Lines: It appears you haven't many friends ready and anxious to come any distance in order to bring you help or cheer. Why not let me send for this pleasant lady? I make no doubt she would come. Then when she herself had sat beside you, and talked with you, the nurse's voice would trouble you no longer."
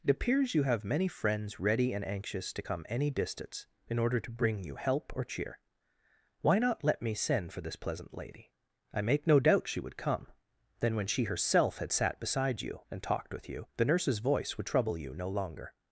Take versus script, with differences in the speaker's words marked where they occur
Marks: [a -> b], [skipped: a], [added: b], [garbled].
It appears you [haven't -> have] many friends ready and anxious to come any distance in order to bring you help or cheer. Why not let me send for this pleasant lady? I make no doubt she would come. Then when she herself had sat beside you, and talked with you, the nurse's voice would trouble you no longer."